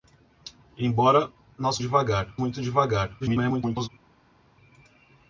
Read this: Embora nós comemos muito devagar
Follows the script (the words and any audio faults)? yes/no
no